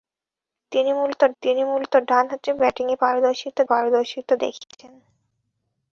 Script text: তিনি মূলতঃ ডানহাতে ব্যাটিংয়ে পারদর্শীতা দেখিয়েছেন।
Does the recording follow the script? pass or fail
fail